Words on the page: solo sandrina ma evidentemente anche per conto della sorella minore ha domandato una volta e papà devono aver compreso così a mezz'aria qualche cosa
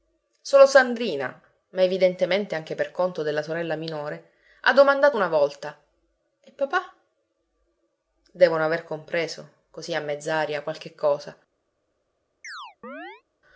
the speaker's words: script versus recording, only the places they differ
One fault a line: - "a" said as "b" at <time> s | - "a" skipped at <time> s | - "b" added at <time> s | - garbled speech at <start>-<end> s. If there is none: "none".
none